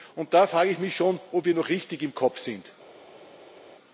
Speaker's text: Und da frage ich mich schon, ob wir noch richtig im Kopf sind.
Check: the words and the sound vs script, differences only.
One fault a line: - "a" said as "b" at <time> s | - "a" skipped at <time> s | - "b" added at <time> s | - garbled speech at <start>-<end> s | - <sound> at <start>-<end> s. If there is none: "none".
none